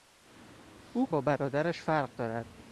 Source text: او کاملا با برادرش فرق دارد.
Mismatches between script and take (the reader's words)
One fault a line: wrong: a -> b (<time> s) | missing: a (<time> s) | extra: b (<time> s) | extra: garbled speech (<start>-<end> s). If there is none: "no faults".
missing: کاملا (1.1 s)